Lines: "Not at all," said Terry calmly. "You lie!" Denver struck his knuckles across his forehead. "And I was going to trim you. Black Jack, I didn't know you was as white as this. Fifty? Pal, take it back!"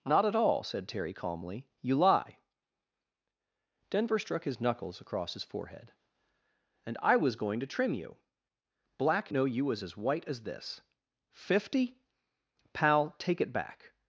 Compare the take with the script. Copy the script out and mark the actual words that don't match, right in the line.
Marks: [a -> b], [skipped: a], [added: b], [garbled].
"Not at all," said Terry calmly. "You lie!" Denver struck his knuckles across his forehead. "And I was going to trim you. Black [skipped: Jack, I didn't] know you was as white as this. Fifty? Pal, take it back!"